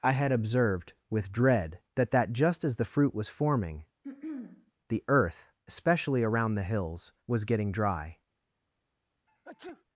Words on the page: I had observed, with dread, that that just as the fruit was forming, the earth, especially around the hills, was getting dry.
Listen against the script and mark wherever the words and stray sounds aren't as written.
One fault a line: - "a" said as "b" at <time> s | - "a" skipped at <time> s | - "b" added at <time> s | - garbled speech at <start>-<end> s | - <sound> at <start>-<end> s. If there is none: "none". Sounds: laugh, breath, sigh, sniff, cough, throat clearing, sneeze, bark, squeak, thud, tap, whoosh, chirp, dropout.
- throat clearing at 4.0-4.7 s
- sneeze at 9.3-9.8 s